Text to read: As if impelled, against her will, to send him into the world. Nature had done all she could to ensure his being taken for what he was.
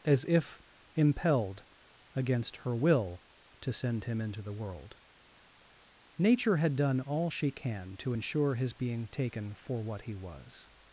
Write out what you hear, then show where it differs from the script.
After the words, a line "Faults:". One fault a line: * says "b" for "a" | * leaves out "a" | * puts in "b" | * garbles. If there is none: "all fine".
As if impelled, against her will, to send him into the world. Nature had done all she can to ensure his being taken for what he was.
Faults:
* says "can" for "could"